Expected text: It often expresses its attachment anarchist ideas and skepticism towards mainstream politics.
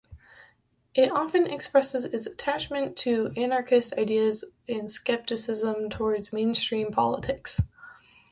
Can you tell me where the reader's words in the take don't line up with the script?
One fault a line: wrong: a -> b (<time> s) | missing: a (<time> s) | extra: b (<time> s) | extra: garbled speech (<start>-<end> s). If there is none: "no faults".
extra: to (3.0 s)